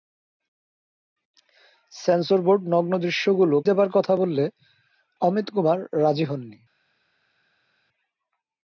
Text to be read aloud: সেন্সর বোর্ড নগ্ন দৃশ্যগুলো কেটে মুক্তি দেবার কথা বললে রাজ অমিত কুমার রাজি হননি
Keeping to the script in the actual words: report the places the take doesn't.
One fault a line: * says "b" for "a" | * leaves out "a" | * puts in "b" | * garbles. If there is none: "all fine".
* leaves out "কেটে মুক্তি"
* leaves out "রাজ"